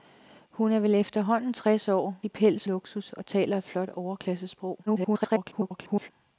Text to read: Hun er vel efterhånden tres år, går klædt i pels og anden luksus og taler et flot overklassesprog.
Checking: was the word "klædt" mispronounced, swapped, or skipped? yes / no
yes